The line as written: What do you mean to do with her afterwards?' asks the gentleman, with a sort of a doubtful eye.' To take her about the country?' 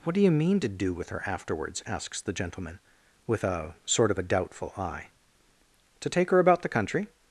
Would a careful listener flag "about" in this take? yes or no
no